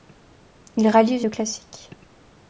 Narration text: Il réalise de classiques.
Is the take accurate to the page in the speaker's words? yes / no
yes